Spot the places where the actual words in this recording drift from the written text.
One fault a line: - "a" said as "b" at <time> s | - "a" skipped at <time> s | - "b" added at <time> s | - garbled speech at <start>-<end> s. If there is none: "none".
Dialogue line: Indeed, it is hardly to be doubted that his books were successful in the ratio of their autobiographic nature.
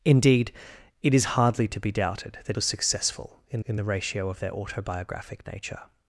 - "his books" skipped at 2.6 s
- "in" added at 3.7 s